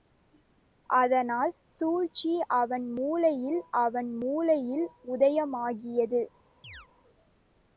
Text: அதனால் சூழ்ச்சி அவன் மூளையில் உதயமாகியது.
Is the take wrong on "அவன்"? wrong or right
right